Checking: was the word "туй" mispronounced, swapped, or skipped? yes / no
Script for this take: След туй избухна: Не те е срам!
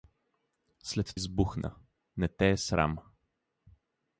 yes